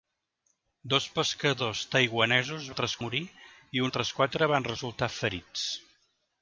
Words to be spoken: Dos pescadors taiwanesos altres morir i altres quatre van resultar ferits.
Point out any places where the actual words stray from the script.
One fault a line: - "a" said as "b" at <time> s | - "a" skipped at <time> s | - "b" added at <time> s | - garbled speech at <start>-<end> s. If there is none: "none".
none